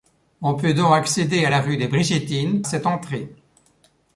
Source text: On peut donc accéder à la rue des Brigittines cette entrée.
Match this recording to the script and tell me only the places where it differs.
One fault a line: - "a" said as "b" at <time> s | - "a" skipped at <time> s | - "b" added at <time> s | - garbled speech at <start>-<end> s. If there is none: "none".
none